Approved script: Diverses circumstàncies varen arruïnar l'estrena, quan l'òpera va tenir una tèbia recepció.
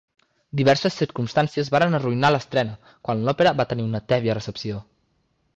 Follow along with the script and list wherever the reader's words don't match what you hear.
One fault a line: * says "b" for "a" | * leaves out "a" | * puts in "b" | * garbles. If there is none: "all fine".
all fine